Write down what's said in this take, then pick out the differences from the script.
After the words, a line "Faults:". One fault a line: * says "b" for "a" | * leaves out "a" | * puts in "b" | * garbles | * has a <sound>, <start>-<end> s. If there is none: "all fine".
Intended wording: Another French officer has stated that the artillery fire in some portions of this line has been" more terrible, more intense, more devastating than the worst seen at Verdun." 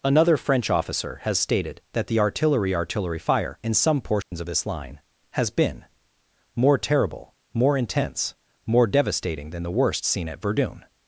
Another French officer has stated that the artillery artillery fire in some portions of this line has been" more terrible, more intense, more devastating than the worst seen at Verdun."
Faults:
* puts in "artillery"
* has a dropout, 4.2-4.3 s